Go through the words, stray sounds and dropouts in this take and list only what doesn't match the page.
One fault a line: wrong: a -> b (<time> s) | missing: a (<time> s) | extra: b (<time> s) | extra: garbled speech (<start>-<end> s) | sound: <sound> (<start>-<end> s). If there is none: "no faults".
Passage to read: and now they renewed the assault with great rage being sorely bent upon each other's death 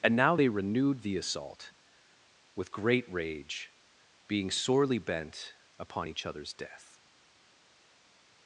no faults